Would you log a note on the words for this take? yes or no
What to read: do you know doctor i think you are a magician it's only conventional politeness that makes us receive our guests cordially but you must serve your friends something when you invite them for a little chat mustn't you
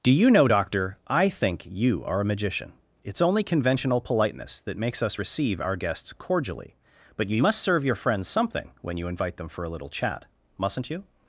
no